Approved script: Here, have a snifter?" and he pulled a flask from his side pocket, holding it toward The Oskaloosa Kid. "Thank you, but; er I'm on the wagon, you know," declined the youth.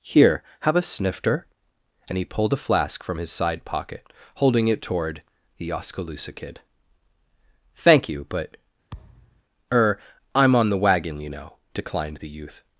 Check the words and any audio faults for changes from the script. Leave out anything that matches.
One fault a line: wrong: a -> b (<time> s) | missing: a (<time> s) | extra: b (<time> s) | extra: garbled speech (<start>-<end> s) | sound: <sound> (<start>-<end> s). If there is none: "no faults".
sound: thud (8.9-9.4 s)